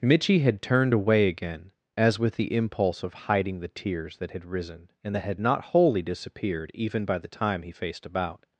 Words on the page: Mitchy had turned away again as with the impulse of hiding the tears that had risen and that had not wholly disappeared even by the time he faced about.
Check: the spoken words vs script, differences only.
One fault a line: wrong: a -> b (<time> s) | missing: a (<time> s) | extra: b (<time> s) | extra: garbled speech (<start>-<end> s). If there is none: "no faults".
no faults